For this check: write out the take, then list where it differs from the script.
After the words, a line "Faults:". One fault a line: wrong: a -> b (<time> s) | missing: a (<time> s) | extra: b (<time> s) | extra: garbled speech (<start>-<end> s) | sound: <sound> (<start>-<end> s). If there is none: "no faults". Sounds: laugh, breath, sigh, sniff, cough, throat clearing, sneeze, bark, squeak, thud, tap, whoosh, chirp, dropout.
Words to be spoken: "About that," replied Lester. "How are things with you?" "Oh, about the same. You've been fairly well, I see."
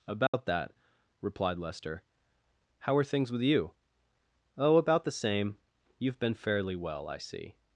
"About that," replied Lester. "How are things with you?" "Oh, about the same. You've been fairly well, I see."
Faults:
sound: dropout (0.3-0.3 s)